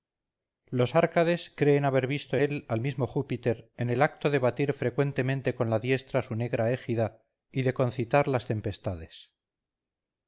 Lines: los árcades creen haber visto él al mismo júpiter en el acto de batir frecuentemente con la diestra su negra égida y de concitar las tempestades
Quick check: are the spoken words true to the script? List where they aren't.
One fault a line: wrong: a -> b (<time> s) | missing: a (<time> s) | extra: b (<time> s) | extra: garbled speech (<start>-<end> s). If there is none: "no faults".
no faults